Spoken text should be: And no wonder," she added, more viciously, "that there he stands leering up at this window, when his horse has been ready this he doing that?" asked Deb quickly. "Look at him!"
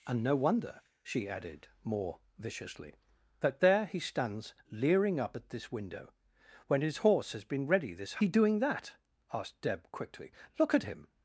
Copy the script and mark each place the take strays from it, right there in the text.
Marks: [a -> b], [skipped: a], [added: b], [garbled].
And no wonder," she added, more viciously, "that there he stands leering up at this window, when his horse has been ready this he doing that?" asked Deb quickly. "Look at him!"